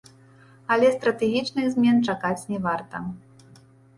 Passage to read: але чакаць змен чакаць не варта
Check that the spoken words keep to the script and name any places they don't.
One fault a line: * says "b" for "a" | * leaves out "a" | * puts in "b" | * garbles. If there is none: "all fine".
* says "стратэгічных" for "чакаць"